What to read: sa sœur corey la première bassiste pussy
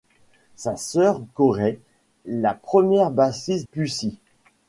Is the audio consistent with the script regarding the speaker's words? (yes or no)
yes